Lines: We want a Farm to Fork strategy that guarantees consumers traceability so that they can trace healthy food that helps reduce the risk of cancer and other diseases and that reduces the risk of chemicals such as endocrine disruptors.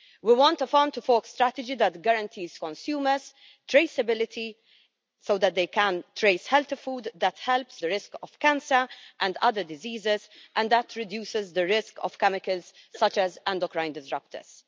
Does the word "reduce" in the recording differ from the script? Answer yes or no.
yes